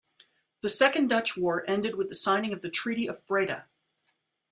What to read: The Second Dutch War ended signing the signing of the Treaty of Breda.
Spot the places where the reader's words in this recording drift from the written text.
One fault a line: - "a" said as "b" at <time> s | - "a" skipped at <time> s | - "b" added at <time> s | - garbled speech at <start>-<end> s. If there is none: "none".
- "signing" said as "with" at 2.0 s